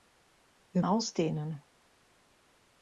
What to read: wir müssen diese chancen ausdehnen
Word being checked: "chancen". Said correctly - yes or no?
no